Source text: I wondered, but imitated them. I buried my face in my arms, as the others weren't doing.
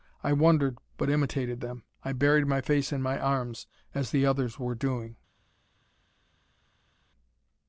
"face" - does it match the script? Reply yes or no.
yes